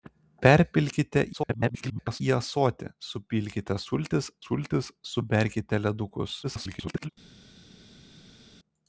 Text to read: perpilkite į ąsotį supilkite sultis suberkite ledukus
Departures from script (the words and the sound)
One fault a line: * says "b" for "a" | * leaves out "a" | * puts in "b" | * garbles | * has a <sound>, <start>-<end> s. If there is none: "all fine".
* garbles
* puts in "sultis"
* garbles